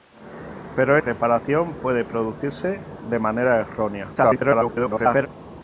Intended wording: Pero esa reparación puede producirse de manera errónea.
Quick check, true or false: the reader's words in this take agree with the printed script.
false